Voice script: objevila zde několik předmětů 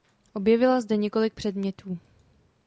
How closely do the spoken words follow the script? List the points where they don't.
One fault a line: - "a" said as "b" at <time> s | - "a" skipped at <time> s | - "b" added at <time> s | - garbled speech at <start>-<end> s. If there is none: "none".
none